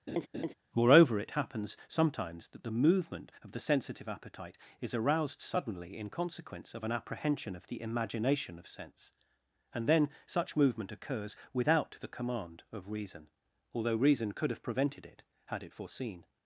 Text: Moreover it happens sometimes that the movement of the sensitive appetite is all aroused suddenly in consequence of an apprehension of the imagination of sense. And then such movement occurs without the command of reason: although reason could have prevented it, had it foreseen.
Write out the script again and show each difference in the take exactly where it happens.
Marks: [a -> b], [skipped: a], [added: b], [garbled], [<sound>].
[laugh] Moreover it happens sometimes that the movement of the sensitive appetite is [skipped: all] aroused suddenly in consequence of an apprehension of the imagination of sense. And then such movement occurs without the command of reason: although reason could have prevented it, had it foreseen.